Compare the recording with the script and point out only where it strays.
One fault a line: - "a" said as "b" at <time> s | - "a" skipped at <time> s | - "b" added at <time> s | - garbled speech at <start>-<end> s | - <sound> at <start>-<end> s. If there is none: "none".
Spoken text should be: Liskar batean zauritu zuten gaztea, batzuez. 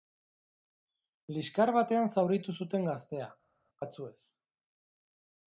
none